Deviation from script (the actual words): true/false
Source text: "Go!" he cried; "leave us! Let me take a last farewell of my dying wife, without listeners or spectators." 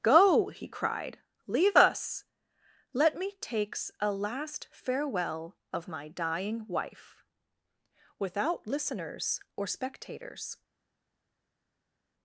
true